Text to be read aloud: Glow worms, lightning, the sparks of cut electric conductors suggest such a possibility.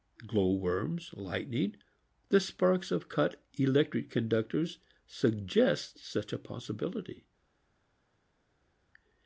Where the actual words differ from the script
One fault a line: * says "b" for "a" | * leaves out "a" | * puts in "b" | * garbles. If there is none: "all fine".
all fine